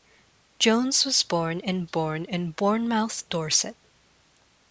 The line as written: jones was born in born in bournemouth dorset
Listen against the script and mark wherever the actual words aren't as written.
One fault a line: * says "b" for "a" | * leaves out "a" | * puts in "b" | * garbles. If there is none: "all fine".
all fine